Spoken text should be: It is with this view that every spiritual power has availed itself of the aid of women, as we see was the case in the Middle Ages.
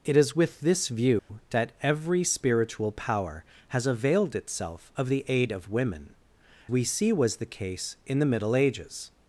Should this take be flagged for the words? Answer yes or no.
yes